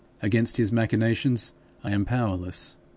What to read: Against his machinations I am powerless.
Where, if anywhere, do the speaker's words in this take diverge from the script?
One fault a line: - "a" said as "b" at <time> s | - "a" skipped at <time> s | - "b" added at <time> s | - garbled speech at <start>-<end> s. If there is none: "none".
none